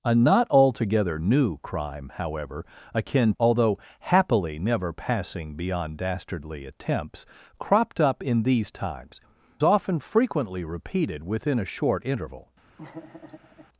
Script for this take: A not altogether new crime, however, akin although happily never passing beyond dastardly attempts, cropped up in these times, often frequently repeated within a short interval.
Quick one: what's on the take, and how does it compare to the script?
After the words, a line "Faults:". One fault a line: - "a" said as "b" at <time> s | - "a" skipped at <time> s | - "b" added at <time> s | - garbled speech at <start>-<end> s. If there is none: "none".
A not altogether new crime, however, akin although happily never passing beyond dastardly attempts, cropped up in these times, often frequently repeated within a short interval.
Faults:
none